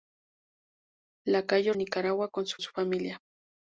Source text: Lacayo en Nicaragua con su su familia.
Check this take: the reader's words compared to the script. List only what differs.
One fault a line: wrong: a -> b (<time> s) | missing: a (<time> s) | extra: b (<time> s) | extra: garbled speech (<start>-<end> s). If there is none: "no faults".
no faults